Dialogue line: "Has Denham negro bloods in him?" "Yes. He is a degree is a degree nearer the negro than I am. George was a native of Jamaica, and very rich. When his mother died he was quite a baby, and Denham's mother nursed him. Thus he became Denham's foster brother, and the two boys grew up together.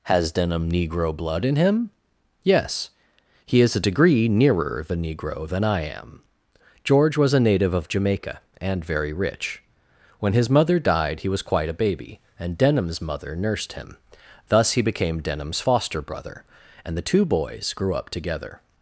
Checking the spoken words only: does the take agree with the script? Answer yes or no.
no